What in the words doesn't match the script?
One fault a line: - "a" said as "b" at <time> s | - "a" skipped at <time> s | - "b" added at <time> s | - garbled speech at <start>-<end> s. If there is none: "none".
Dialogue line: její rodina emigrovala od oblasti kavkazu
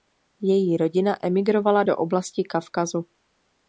- "od" said as "do" at 1.8 s